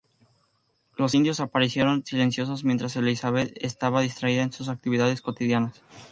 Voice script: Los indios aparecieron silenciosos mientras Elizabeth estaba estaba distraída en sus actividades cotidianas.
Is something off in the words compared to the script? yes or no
yes